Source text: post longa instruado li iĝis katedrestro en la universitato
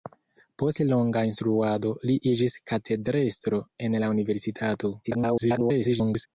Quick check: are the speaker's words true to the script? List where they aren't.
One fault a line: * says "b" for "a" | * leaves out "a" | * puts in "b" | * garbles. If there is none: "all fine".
* garbles